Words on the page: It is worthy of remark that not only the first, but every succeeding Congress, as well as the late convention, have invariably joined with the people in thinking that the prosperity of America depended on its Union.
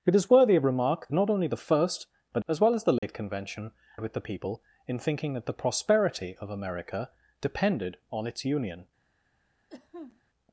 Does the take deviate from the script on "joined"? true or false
true